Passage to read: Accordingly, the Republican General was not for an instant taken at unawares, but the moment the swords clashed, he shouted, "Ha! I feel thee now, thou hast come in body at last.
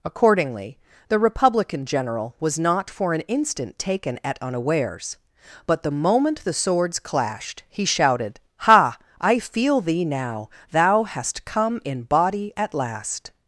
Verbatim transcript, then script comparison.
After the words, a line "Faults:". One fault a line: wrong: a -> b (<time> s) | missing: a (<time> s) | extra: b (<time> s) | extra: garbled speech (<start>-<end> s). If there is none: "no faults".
Accordingly, the Republican General was not for an instant taken at unawares, but the moment the swords clashed, he shouted, "Ha! I feel thee now, thou hast come in body at last.
Faults:
no faults